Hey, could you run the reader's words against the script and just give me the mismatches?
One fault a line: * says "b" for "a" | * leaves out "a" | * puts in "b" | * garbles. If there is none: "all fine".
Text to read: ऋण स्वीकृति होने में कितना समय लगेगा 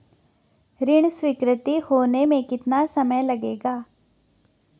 all fine